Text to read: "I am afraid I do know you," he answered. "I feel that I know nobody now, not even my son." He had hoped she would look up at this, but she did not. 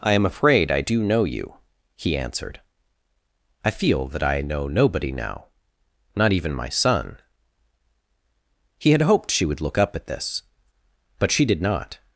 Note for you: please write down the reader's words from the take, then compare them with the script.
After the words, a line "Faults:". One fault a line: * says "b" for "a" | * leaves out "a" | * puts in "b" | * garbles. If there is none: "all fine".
"I am afraid I do know you," he answered. "I feel that I know nobody now, not even my son." He had hoped she would look up at this, but she did not.
Faults:
all fine